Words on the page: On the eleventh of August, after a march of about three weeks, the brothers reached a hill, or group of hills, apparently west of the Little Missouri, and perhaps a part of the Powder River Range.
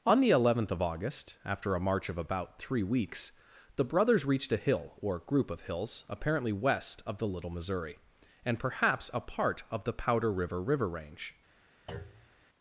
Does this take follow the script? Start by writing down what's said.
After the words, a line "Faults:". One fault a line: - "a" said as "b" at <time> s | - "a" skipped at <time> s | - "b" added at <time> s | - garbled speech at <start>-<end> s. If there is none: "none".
On the eleventh of August, after a march of about three weeks, the brothers reached a hill, or group of hills, apparently west of the Little Missouri, and perhaps a part of the Powder River River Range.
Faults:
- "River" added at 10.6 s